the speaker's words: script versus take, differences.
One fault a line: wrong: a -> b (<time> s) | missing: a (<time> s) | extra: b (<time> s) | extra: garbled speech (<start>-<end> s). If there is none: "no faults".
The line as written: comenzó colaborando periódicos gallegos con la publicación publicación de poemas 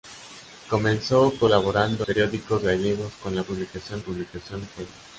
no faults